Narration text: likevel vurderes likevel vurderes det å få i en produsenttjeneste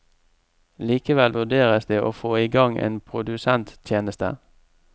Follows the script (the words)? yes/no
no